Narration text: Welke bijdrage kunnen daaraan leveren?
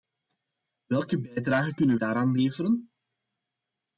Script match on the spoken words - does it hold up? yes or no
yes